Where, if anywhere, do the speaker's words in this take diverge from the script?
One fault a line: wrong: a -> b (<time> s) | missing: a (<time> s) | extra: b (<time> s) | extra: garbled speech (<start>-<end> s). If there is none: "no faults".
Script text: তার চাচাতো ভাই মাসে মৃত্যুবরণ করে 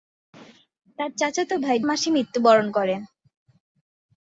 no faults